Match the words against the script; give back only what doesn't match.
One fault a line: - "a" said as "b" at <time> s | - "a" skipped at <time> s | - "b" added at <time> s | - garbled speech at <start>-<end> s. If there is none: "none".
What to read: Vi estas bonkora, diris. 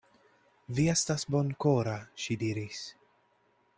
- "ŝi" added at 2.3 s